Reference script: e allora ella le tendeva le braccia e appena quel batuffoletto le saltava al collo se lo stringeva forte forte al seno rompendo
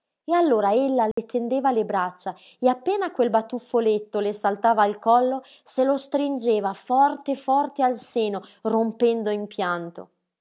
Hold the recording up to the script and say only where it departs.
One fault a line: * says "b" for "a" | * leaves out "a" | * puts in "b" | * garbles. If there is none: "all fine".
all fine